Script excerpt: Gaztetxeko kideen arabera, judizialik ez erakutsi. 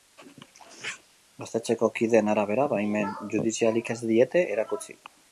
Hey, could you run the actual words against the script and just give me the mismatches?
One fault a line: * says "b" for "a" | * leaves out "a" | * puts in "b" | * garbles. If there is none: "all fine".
* puts in "baimen"
* puts in "diete"